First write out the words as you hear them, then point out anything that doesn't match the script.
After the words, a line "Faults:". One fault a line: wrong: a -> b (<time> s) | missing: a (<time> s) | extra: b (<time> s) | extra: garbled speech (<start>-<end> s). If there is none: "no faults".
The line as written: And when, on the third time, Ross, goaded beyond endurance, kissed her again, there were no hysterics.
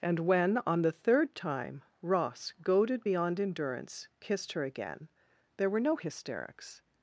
And when, on the third time, Ross, goaded beyond endurance, kissed her again, there were no hysterics.
Faults:
no faults